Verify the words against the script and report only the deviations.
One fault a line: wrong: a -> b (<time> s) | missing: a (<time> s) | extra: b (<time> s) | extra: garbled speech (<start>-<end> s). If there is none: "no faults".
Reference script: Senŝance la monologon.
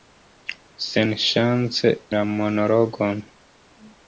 no faults